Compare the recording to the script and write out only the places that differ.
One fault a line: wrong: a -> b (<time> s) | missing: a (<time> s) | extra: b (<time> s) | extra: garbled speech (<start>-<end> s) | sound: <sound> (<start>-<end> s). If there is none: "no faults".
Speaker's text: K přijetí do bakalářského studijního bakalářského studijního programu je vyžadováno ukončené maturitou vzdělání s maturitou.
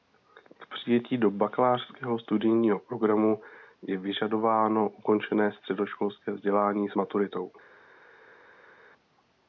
missing: bakalářského studijního (2.8 s)
wrong: maturitou -> středoškolské (5.5 s)